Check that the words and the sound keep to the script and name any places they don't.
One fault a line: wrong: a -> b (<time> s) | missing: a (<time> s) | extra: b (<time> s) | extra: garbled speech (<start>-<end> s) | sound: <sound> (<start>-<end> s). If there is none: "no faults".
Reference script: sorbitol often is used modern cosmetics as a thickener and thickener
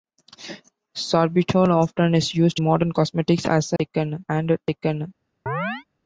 sound: chirp (5.5-5.8 s)